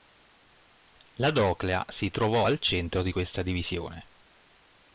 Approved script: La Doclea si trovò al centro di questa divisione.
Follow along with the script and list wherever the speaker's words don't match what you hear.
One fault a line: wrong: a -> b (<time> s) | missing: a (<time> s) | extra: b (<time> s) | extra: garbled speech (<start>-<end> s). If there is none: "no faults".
no faults